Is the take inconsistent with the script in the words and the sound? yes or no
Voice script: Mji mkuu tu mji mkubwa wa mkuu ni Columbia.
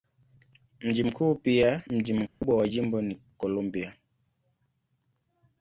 yes